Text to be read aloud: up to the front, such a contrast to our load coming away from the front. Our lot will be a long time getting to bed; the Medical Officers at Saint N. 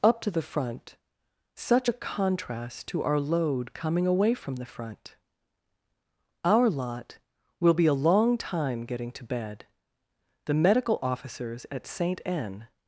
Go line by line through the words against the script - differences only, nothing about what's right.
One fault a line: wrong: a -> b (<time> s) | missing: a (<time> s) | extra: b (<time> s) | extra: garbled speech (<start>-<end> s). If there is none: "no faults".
no faults